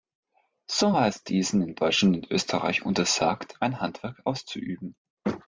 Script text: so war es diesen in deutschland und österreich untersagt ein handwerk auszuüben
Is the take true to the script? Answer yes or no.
yes